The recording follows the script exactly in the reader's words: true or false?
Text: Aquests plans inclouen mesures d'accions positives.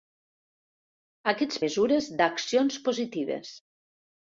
false